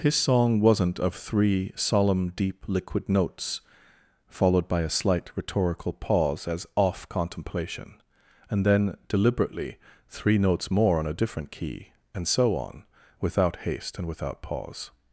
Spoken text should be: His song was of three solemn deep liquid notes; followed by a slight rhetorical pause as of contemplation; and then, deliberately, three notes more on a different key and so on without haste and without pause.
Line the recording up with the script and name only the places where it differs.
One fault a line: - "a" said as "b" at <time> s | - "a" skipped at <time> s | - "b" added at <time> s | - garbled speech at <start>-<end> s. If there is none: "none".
- "was" said as "wasn't" at 0.6 s
- "of" said as "off" at 6.8 s